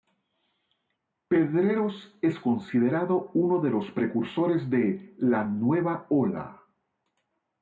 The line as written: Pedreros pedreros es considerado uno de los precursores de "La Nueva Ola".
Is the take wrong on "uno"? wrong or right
right